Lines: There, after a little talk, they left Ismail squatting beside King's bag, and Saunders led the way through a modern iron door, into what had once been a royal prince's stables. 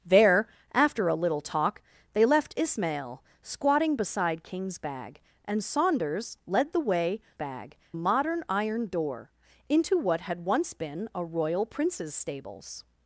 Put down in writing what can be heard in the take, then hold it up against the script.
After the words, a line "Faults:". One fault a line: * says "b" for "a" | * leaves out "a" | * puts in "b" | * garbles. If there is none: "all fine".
There, after a little talk, they left Ismail squatting beside King's bag, and Saunders led the way bag a modern iron door, into what had once been a royal prince's stables.
Faults:
* says "bag" for "through"